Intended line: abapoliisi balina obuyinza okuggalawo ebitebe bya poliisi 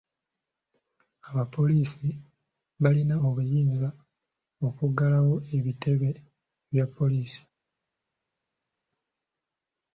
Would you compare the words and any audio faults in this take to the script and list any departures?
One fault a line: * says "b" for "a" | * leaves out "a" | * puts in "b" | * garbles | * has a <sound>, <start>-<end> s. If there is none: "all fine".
all fine